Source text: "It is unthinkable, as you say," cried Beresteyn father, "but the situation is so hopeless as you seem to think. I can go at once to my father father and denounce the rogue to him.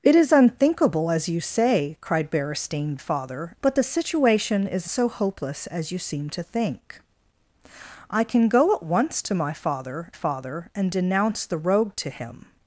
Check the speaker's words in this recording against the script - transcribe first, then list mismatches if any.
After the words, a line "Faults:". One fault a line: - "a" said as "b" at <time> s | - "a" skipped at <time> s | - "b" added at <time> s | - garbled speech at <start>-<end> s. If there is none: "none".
"It is unthinkable, as you say," cried Beresteyn father, "but the situation is so hopeless as you seem to think. I can go at once to my father father and denounce the rogue to him.
Faults:
none